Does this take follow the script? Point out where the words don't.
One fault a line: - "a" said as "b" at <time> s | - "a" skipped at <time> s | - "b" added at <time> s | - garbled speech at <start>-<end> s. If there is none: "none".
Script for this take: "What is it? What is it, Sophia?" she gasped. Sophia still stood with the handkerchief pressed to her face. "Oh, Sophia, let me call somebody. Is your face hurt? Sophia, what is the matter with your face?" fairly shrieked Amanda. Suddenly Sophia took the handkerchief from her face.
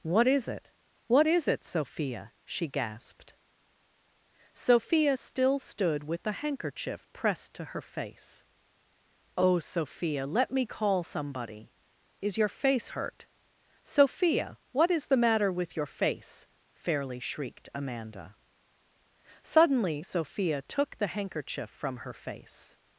none